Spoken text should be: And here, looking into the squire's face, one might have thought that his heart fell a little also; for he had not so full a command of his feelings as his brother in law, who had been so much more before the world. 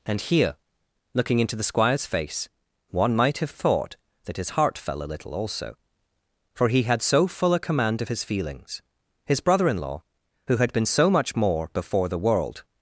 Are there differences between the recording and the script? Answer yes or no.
yes